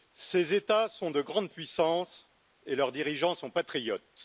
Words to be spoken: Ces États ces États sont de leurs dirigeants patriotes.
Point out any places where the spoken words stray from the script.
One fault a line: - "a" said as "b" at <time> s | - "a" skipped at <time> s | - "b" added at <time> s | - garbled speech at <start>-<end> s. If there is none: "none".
- "ces États sont de" said as "sont de grandes puissances et" at 0.9 s
- "sont" added at 3.3 s